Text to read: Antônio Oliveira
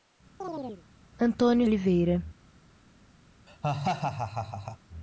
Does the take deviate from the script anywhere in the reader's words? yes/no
no